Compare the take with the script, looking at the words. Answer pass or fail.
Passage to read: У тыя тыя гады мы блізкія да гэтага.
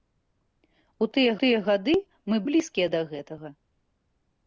pass